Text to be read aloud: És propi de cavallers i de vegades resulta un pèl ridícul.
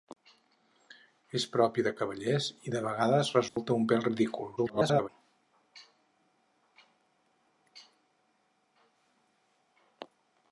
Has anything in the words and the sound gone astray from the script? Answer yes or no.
yes